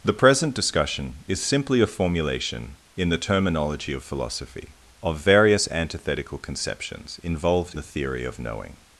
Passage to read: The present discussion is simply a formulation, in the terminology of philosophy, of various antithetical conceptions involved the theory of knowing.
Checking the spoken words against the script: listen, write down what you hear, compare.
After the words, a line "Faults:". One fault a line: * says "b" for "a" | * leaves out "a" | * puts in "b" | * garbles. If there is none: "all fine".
The present discussion is simply a formulation, in the terminology of philosophy, of various antithetical conceptions involved the theory of knowing.
Faults:
all fine